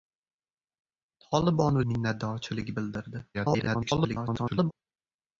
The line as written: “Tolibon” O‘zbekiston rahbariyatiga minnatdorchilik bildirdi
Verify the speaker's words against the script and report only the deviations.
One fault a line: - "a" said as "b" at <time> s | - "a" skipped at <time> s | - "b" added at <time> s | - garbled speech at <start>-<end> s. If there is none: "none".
- "O‘zbekiston rahbariyatiga" skipped at 1.8 s
- garbled speech at 3.3-4.7 s